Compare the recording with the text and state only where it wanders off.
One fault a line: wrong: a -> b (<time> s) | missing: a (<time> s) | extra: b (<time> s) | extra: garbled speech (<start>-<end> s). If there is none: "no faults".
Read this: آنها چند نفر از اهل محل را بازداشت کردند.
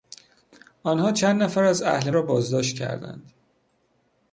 missing: محل (2.1 s)